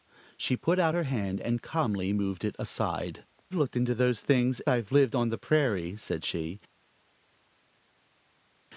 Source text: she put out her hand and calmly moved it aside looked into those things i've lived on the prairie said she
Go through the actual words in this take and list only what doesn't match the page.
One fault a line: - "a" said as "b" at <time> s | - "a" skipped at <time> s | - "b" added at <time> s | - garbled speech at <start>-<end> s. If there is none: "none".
none